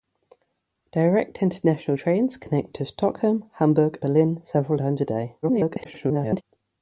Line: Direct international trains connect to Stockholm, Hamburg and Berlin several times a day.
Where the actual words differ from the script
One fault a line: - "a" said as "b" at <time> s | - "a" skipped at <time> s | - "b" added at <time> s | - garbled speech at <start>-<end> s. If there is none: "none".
- "and" skipped at 4.0 s
- garbled speech at 5.4-6.4 s